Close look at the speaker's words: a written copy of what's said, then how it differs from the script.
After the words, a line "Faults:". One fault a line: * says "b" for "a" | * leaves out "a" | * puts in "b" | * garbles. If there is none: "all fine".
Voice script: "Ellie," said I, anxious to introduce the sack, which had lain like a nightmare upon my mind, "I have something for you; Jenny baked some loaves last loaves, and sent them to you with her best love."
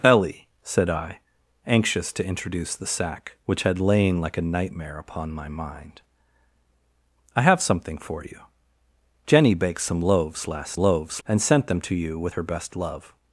"Ellie," said I, anxious to introduce the sack, which had lain like a nightmare upon my mind, "I have something for you; Jenny baked some loaves last loaves, and sent them to you with her best love."
Faults:
all fine